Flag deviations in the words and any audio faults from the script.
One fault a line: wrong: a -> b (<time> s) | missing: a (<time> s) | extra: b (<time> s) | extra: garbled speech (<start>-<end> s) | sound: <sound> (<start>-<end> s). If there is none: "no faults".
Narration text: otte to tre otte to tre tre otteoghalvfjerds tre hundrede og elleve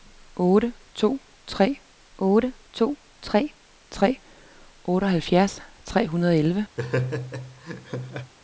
sound: laugh (6.8-8.3 s)